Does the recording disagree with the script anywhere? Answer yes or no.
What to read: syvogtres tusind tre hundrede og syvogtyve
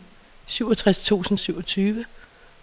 yes